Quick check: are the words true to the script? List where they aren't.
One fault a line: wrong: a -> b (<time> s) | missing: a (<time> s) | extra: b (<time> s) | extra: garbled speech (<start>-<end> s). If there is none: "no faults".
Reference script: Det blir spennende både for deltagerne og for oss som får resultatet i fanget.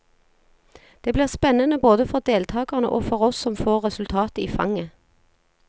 no faults